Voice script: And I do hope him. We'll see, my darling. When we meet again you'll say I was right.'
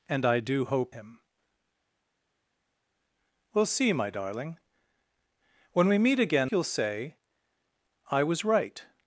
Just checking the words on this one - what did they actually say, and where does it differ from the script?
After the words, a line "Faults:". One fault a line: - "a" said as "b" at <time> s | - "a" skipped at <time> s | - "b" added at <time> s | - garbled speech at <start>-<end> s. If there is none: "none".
And I do hope him. We'll see, my darling. When we meet again you'll say I was right.'
Faults:
none